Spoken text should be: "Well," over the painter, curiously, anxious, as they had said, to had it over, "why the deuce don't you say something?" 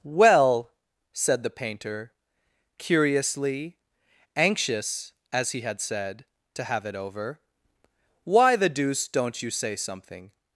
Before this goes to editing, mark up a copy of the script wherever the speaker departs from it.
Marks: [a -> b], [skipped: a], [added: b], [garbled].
"Well," [over -> said] the painter, curiously, anxious, as [they -> he] had said, to [had -> have] it over, "why the deuce don't you say something?"